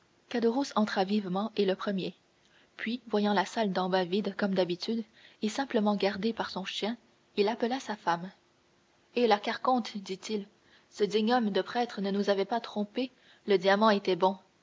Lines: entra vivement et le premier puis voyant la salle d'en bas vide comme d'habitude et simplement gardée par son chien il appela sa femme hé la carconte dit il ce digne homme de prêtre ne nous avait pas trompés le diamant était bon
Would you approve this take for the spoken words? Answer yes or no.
yes